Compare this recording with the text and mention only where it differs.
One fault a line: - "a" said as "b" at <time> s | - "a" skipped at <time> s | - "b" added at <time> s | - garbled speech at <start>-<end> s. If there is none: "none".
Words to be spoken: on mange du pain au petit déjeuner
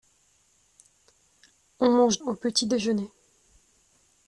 - "du pain" skipped at 2.2 s